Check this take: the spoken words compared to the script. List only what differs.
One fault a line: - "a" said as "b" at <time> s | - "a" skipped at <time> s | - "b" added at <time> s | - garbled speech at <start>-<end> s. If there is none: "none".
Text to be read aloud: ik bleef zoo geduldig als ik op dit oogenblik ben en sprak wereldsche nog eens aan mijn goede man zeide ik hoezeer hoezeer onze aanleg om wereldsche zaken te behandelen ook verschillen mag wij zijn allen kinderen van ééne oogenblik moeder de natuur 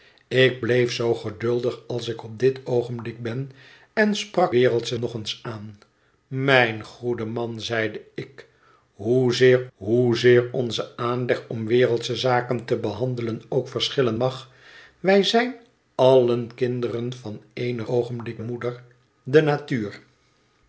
none